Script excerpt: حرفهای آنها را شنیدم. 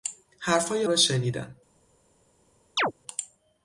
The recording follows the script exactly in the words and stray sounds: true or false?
false